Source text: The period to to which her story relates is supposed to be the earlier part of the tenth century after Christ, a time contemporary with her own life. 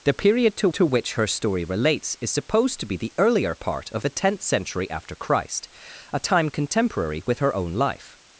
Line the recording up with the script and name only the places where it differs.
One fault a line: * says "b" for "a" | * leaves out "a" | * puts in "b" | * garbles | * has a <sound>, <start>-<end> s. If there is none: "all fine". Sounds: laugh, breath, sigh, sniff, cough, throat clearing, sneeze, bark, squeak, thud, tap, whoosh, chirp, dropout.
all fine